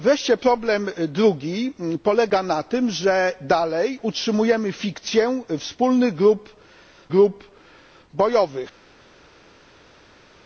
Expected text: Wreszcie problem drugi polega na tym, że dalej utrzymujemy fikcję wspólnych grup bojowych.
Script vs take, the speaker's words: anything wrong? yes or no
yes